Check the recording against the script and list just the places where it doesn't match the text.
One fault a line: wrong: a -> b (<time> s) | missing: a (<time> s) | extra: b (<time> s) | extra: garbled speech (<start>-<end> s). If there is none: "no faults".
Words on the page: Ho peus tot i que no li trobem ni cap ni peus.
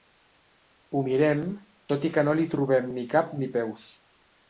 wrong: peus -> mirem (1.1 s)